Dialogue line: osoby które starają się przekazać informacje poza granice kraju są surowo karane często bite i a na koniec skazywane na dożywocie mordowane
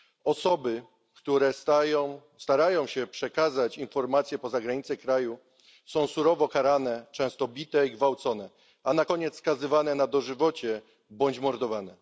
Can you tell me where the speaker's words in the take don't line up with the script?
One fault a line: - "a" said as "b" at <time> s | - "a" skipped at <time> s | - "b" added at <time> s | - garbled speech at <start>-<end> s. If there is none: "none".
- "gwałcone" added at 7.9 s
- "bądź" added at 11.1 s